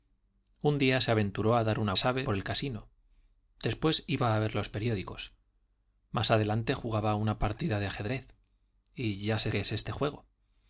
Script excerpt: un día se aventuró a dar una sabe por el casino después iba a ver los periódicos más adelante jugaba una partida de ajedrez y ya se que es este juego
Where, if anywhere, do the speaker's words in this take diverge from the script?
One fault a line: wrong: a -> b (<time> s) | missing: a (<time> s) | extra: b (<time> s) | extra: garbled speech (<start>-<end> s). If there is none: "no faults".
no faults